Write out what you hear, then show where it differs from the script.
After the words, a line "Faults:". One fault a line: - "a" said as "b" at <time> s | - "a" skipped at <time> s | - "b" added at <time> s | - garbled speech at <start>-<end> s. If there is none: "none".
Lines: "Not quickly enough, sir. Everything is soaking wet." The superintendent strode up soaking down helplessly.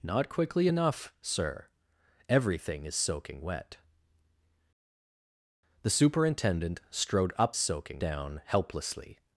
"Not quickly enough, sir. Everything is soaking wet." The superintendent strode up soaking down helplessly.
Faults:
none